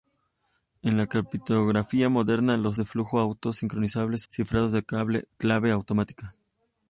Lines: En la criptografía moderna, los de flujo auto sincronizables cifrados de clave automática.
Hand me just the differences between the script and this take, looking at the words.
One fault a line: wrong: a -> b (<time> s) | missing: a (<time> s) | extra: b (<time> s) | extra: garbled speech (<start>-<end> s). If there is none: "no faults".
no faults